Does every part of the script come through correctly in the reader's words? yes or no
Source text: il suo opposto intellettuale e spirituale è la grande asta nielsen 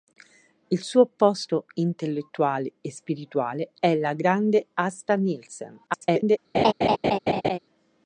no